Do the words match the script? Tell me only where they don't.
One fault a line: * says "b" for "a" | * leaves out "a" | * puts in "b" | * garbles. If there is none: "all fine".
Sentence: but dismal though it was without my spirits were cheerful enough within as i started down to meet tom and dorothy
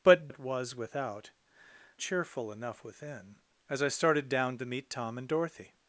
* leaves out "dismal though"
* leaves out "my spirits were"